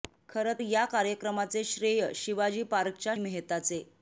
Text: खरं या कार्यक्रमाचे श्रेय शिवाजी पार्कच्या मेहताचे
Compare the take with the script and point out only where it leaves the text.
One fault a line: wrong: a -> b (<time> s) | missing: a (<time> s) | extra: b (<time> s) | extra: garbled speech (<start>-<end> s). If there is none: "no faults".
no faults